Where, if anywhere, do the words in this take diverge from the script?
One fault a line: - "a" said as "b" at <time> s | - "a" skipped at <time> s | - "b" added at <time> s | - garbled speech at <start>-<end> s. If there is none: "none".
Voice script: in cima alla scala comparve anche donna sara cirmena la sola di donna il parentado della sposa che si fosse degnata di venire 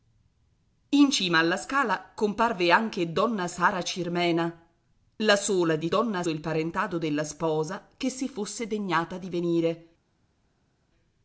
none